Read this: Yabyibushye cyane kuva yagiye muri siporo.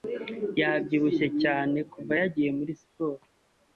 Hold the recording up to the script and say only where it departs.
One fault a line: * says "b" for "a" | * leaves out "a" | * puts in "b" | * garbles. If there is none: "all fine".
all fine